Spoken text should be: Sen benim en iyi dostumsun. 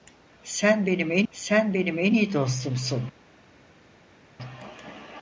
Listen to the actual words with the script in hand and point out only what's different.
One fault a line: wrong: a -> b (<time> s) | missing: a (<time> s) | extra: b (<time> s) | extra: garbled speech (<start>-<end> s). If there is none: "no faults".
extra: sen benim en (1.3 s)